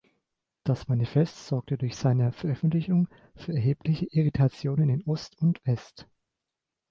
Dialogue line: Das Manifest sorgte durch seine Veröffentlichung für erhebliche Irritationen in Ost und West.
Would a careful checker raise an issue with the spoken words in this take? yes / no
no